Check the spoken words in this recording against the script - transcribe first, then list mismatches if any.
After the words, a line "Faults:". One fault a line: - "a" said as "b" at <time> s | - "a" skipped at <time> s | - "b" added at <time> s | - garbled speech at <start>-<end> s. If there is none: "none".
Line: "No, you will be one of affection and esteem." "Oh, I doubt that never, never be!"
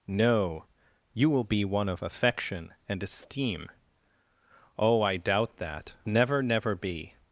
"No, you will be one of affection and esteem." "Oh, I doubt that never, never be!"
Faults:
none